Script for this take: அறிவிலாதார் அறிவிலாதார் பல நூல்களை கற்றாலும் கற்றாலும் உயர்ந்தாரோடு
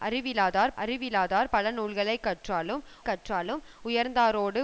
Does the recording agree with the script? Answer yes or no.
yes